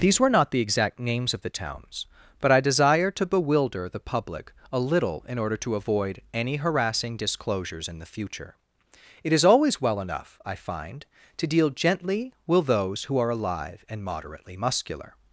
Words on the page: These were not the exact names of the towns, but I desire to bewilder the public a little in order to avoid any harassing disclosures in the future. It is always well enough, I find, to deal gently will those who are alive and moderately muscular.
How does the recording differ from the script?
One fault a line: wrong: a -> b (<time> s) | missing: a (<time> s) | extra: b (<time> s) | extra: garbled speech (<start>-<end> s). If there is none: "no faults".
wrong: will -> with (12.5 s)